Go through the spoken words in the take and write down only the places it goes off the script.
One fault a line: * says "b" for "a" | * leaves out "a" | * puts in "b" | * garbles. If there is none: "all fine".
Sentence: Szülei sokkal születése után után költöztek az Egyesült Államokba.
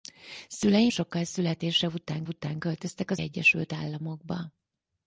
all fine